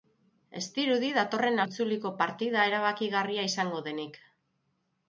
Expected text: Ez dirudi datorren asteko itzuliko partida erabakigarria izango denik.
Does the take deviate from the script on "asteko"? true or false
true